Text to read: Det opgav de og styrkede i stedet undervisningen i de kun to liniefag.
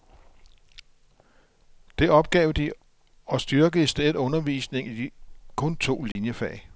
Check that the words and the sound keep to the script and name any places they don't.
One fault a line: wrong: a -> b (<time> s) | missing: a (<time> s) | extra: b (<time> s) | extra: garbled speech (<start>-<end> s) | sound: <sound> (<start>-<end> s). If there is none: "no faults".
sound: dropout (6.1-6.2 s)